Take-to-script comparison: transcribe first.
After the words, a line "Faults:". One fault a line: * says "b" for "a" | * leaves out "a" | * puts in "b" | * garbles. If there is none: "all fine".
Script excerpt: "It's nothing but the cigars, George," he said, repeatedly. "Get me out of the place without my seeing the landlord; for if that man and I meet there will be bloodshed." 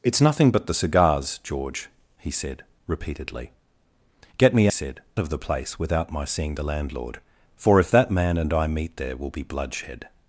"It's nothing but the cigars, George," he said, repeatedly. "Get me said of the place without my seeing the landlord; for if that man and I meet there will be bloodshed."
Faults:
* says "said" for "out"